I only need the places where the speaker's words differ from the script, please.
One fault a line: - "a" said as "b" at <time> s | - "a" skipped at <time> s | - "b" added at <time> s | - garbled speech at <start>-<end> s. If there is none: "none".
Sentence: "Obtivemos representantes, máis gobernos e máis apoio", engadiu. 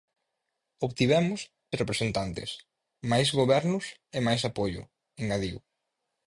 none